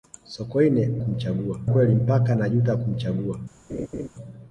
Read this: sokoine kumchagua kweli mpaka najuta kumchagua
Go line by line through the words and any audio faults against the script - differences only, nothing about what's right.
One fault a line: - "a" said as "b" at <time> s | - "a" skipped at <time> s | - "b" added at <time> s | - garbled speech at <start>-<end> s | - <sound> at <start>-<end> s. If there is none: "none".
- laugh at 3.7-4.1 s